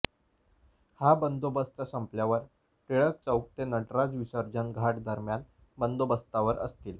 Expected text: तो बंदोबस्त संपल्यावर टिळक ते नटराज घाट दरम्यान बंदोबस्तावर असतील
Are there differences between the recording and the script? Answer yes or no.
yes